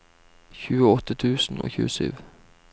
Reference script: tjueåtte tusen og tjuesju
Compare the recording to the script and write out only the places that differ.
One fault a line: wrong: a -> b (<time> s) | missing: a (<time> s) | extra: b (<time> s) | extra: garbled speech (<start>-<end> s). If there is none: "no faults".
no faults